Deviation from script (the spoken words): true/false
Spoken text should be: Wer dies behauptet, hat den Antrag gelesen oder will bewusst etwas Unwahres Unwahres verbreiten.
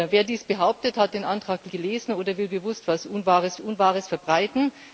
false